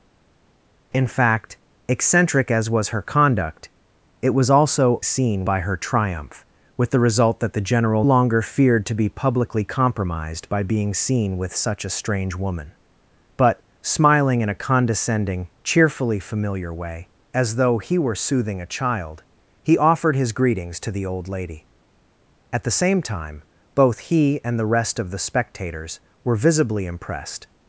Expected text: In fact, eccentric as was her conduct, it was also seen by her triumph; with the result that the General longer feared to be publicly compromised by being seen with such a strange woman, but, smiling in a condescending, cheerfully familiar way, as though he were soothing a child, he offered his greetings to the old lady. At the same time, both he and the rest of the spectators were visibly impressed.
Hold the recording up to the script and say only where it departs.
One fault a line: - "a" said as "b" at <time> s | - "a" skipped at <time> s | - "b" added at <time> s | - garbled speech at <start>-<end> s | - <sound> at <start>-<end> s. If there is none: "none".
none